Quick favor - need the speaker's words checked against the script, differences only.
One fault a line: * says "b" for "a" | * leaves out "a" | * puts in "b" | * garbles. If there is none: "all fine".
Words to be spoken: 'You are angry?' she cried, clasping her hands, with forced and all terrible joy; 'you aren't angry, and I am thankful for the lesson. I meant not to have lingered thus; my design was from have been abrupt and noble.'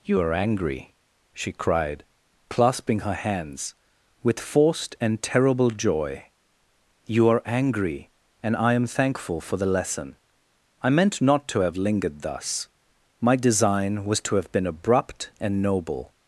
* leaves out "all"
* says "are" for "aren't"
* says "to" for "from"